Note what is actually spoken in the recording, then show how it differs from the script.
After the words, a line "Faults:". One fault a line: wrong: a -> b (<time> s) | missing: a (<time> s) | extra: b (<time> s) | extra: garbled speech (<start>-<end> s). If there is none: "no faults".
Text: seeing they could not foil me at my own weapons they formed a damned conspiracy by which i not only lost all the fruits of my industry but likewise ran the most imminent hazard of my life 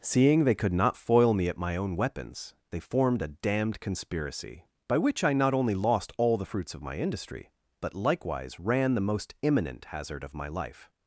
seeing they could not foil me at my own weapons they formed a damned conspiracy by which i not only lost all the fruits of my industry but likewise ran the most imminent hazard of my life
Faults:
no faults